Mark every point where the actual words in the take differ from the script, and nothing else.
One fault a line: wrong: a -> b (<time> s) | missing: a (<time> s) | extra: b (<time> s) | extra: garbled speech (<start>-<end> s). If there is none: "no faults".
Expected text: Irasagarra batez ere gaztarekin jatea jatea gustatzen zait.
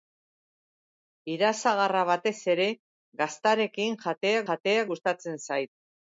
no faults